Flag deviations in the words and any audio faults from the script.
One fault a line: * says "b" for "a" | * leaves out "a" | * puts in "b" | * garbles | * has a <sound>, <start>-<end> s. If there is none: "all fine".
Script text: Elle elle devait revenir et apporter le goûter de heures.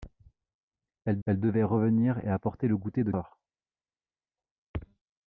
all fine